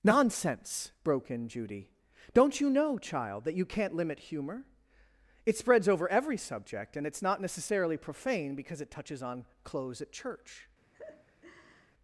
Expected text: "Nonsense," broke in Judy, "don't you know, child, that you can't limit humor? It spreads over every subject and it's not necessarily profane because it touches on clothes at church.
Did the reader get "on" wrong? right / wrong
right